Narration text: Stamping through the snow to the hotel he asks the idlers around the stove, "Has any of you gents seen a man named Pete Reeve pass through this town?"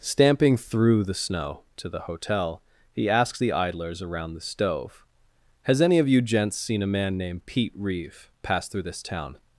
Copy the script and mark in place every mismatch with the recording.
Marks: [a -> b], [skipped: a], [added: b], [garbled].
Stamping through the snow to the hotel he asks the idlers around the stove, "Has any of you gents seen a man named Pete Reeve pass through this town?"